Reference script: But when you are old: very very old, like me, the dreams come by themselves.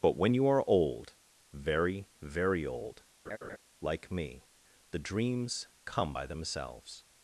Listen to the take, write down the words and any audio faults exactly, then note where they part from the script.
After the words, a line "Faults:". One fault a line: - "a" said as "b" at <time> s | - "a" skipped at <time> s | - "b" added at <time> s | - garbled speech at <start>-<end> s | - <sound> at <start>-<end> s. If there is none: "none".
But when you are old: very very old, like me, the dreams come by themselves.
Faults:
- laugh at 3.3-3.6 s